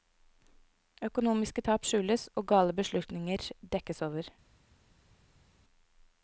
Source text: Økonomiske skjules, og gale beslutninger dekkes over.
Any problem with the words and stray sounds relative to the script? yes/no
yes